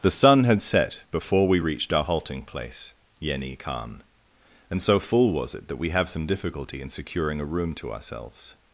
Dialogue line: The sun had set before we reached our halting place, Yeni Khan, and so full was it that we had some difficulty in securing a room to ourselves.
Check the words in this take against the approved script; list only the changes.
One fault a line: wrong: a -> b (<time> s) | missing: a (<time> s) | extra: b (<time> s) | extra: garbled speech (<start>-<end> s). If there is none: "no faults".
wrong: had -> have (5.9 s)